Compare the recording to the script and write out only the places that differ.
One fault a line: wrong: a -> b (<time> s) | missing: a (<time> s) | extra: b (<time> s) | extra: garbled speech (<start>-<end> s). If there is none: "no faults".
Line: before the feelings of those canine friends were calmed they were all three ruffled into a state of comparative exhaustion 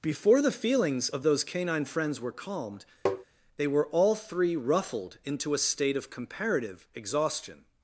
no faults